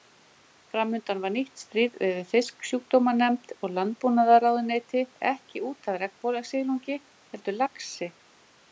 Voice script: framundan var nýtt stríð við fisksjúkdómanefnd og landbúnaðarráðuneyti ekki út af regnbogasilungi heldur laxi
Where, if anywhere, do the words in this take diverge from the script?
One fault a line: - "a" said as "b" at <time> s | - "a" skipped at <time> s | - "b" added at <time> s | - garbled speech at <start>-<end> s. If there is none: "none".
none